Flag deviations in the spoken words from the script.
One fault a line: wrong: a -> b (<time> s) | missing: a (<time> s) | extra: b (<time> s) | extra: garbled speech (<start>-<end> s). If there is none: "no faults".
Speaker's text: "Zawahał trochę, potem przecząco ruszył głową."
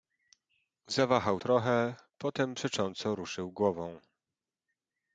no faults